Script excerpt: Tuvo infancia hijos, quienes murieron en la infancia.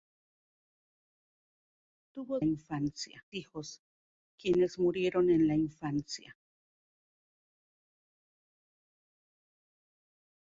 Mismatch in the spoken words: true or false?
false